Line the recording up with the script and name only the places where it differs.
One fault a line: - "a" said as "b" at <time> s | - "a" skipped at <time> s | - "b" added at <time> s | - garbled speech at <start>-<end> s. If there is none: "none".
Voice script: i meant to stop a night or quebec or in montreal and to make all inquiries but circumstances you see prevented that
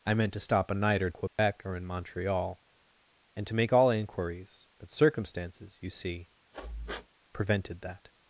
none